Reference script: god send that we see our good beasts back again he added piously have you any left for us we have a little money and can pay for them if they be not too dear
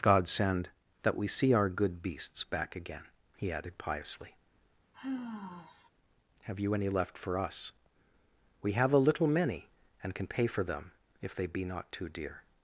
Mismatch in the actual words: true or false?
true